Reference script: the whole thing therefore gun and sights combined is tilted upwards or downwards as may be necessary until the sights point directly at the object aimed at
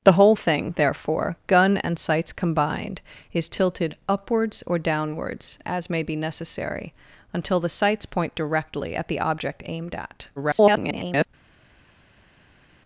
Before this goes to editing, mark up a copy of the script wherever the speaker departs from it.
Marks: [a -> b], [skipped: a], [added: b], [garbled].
the whole thing therefore gun and sights combined is tilted upwards or downwards as may be necessary until the sights point directly at the object aimed at [garbled]